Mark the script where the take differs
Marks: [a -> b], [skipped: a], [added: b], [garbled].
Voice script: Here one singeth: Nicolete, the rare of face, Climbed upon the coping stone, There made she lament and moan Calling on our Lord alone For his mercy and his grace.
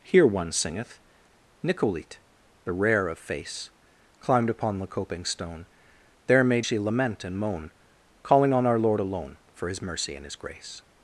Here one singeth: Nicolete, the rare of face, Climbed upon the coping stone, There made she lament and moan Calling on our Lord alone For his mercy and his grace.